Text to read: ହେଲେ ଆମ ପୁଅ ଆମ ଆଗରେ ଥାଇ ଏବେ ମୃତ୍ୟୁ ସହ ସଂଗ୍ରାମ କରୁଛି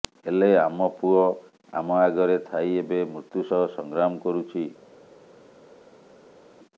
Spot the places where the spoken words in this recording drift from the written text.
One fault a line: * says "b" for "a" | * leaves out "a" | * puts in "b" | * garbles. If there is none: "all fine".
all fine